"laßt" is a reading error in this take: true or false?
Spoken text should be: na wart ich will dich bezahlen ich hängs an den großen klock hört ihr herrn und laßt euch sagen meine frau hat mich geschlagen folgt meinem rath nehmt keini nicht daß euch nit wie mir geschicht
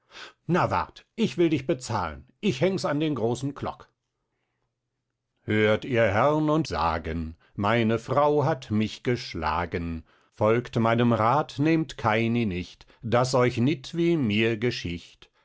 true